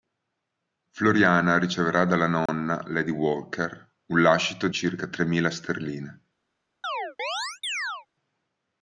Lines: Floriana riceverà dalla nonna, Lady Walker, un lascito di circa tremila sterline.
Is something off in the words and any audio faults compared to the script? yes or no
yes